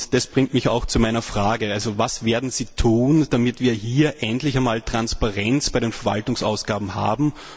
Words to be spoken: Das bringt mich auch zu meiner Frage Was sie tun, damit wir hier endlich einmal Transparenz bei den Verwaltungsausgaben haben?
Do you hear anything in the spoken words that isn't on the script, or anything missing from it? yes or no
yes